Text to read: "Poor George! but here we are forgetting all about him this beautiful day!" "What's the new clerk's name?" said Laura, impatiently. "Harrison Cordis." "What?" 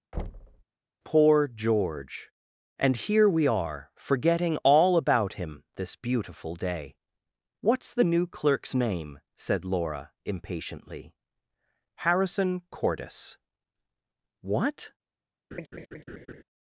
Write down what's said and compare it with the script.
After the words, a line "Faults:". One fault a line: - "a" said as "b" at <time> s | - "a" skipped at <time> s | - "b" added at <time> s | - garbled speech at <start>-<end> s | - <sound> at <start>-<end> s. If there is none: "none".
"Poor George! and here we are forgetting all about him this beautiful day!" "What's the new clerk's name?" said Laura, impatiently. "Harrison Cordis." "What?"
Faults:
- thud at 0.1-0.6 s
- "but" said as "and" at 2.8 s
- laugh at 15.5-16.4 s